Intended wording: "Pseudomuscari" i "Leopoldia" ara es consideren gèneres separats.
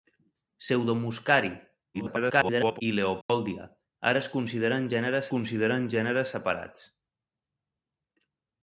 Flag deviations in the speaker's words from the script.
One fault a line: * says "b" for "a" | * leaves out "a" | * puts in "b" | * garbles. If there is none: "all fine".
* garbles
* puts in "consideren gèneres"